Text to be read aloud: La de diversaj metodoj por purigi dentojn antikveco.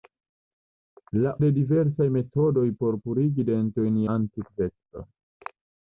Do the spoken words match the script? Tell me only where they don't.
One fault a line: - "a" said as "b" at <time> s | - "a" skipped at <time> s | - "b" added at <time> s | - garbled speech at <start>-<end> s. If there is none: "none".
none